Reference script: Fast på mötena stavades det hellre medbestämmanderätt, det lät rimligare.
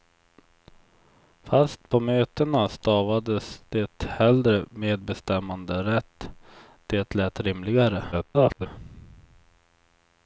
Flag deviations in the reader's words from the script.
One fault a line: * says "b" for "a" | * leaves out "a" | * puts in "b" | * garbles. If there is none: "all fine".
* garbles